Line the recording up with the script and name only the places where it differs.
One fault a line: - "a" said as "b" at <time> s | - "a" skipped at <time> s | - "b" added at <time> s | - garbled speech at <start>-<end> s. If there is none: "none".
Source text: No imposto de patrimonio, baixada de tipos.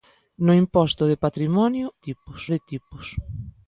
- "baixada" said as "tipos" at 2.1 s